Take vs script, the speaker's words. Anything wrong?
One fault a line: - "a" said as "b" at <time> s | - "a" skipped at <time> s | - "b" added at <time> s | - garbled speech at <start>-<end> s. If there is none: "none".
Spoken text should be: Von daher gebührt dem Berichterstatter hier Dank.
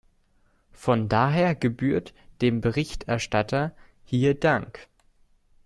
none